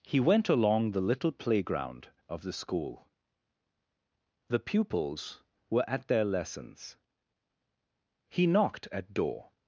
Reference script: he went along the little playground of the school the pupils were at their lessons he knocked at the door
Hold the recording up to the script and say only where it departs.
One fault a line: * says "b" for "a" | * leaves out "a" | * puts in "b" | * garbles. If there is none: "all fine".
* leaves out "the"